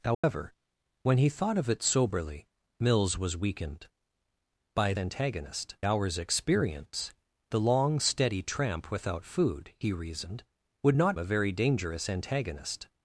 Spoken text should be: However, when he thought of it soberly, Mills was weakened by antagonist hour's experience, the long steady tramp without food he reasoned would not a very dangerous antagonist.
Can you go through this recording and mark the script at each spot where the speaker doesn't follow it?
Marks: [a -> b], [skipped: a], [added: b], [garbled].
However, when he thought of it soberly, Mills was weakened by antagonist hour's experience, the long steady tramp without food he reasoned would not a very dangerous antagonist.